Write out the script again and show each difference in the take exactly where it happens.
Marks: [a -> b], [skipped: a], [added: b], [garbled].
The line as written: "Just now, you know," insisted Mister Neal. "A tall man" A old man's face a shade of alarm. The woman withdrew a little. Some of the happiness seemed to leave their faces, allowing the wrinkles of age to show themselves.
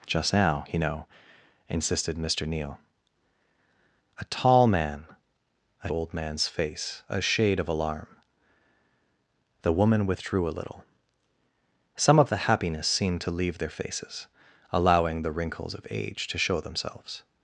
"Just now, you know," insisted Mister Neal. "A tall man" A old man's face a shade of alarm. The woman withdrew a little. Some of the happiness seemed to leave their faces, allowing the wrinkles of age to show themselves.